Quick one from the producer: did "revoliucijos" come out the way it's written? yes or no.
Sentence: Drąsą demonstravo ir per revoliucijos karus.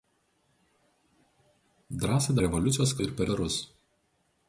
no